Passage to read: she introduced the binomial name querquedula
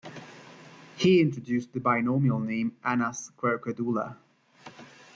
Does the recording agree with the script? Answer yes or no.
no